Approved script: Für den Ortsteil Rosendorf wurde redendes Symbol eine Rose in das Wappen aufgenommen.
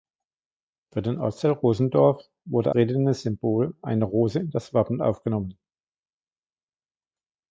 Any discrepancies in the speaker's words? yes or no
no